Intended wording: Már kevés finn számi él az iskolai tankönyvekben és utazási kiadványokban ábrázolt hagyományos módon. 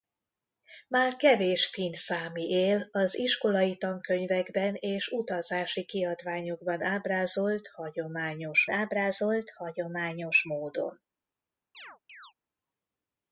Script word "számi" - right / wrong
right